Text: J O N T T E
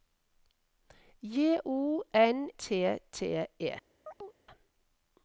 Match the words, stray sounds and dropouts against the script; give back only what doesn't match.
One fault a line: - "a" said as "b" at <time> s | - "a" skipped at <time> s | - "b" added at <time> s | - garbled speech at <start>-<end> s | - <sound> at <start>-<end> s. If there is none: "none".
- chirp at 4.1-4.4 s